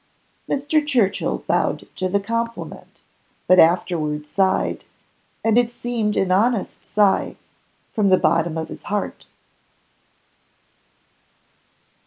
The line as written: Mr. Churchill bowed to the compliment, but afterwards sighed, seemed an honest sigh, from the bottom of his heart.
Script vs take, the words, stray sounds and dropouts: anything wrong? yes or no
yes